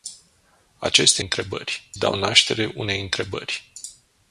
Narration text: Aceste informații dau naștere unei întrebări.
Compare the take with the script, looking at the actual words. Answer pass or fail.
fail